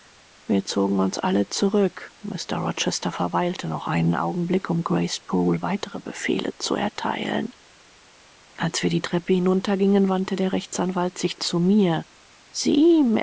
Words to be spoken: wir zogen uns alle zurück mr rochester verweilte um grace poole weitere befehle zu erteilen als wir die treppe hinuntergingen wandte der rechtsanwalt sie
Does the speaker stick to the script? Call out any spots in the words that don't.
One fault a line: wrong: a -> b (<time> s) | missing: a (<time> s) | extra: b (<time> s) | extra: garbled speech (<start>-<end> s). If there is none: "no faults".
extra: noch einen augenblick (3.7 s)
extra: sich zu mir (11.2 s)